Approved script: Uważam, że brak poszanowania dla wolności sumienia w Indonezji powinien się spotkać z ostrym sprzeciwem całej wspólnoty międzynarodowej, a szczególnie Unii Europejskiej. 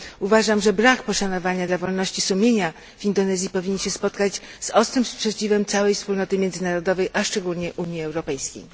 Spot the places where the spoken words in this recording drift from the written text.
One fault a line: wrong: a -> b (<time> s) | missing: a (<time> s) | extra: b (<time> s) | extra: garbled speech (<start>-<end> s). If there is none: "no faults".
no faults